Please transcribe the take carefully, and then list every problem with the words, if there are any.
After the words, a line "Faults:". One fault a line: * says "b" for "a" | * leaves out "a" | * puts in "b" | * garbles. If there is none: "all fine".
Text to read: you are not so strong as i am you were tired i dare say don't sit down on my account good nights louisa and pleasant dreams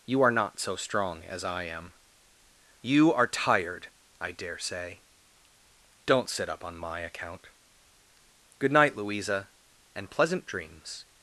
you are not so strong as i am you are tired i dare say don't sit up on my account good night louisa and pleasant dreams
Faults:
* says "are" for "were"
* says "up" for "down"
* says "night" for "nights"